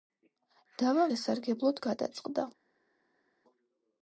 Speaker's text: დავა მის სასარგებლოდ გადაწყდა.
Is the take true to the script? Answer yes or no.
no